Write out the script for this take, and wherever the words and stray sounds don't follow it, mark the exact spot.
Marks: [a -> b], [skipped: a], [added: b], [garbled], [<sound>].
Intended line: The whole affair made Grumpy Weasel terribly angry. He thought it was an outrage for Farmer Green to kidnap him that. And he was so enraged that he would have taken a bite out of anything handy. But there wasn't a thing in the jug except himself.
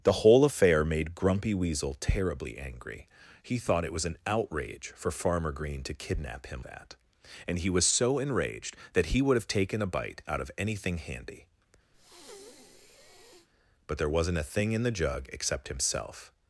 The whole affair made Grumpy Weasel terribly angry. He thought it was an outrage for Farmer Green to kidnap him that. And he was so enraged that he would have taken a bite out of anything handy. [breath] But there wasn't a thing in the jug except himself.